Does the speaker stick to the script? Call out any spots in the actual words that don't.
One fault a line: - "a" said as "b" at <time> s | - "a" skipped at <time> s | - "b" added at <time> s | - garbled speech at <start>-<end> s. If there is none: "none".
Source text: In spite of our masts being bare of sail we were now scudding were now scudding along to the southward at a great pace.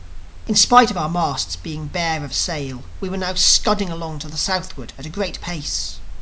- "were now scudding" skipped at 3.9 s